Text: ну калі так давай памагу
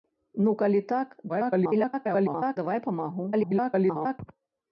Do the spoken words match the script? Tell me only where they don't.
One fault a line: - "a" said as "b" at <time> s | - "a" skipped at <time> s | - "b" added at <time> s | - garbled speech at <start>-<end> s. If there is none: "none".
- garbled speech at 1.3-2.6 s
- garbled speech at 3.3-4.2 s